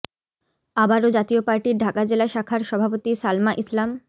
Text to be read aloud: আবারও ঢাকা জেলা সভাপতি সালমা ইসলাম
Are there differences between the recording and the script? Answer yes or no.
yes